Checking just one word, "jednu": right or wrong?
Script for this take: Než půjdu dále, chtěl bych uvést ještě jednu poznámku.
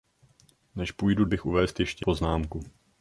wrong